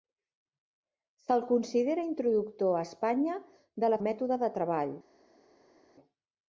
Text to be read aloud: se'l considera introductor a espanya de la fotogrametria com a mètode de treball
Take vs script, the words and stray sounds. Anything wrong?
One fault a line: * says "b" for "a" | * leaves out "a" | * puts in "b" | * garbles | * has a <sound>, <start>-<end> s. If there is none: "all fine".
* leaves out "fotogrametria com"